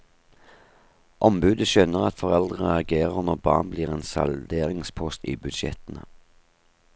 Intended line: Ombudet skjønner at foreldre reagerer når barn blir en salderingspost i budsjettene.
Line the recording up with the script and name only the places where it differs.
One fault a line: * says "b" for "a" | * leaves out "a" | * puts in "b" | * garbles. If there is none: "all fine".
all fine